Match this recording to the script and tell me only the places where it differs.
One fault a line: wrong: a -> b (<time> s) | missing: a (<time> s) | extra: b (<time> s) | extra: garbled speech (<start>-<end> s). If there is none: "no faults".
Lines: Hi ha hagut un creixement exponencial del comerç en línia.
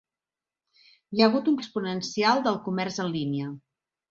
missing: creixement (1.6 s)